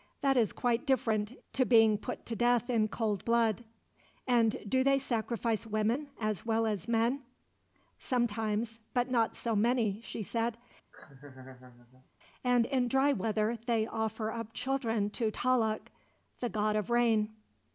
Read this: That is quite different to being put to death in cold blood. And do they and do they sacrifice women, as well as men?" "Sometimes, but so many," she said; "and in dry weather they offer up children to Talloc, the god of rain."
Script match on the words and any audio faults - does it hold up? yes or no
no